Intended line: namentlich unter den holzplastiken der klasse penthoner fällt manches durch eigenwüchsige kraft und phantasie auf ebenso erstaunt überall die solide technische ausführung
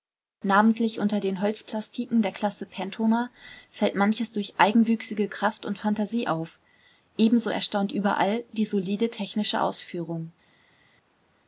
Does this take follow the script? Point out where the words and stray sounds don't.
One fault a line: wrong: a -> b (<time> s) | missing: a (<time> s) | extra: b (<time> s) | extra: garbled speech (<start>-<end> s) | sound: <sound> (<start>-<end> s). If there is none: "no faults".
no faults